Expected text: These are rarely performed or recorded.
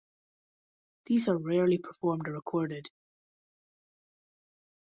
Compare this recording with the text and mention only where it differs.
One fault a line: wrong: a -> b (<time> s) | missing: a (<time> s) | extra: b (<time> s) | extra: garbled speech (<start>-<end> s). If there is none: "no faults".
no faults